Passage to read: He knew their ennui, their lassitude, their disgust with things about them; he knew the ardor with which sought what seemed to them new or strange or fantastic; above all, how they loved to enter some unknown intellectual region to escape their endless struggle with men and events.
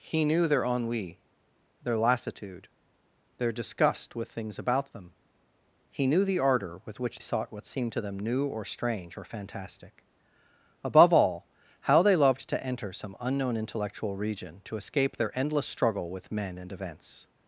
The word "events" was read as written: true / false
true